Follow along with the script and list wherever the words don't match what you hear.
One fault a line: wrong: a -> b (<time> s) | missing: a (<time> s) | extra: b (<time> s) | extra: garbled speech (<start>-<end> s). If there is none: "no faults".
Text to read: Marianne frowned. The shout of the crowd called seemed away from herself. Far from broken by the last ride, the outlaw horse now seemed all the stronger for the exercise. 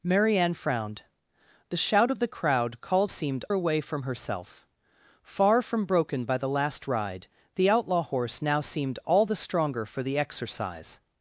no faults